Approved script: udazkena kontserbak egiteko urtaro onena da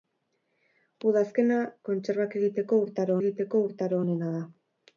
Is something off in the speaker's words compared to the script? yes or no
yes